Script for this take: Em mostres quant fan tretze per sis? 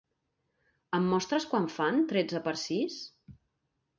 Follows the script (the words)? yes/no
yes